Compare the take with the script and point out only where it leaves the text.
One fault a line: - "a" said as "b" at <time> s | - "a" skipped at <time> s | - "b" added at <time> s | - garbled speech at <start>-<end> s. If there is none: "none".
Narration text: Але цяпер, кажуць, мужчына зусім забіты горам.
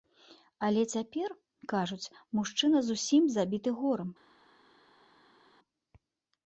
none